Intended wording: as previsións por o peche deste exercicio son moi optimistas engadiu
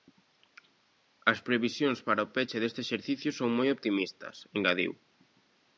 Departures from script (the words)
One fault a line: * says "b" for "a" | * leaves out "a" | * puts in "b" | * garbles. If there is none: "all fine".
* says "para" for "por"